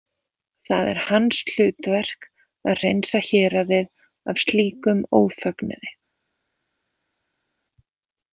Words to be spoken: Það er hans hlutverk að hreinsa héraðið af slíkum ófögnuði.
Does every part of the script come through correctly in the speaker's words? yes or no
yes